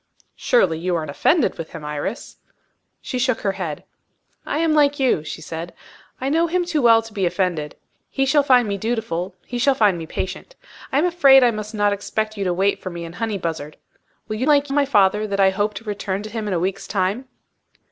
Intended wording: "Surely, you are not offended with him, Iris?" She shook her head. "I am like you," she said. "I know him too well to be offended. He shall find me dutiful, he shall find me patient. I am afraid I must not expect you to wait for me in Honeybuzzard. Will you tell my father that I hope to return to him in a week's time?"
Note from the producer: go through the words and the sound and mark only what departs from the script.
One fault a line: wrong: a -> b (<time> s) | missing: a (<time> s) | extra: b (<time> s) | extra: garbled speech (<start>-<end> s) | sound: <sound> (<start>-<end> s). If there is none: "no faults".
missing: not (1.1 s)
wrong: tell -> like (14.4 s)